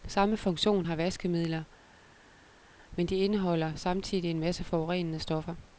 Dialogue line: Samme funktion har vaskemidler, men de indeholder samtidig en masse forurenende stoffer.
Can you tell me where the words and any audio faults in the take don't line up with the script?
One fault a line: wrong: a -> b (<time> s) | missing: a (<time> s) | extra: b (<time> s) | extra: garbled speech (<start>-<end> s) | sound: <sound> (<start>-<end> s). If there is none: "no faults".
no faults